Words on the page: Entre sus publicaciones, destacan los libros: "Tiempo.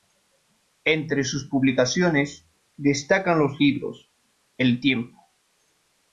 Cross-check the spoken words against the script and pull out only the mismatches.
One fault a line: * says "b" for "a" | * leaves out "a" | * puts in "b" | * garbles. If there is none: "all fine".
* puts in "El"